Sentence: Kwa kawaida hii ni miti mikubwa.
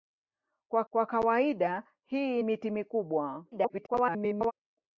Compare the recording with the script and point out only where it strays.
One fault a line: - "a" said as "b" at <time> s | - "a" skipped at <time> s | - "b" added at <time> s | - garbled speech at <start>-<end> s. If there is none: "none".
- "kwa" added at 0.9 s
- "ni" skipped at 2.4 s
- garbled speech at 3.5-4.5 s